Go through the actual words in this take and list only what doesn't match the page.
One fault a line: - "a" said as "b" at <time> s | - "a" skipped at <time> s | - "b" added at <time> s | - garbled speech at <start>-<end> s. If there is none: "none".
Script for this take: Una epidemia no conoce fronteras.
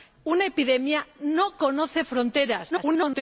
- garbled speech at 2.7-3.2 s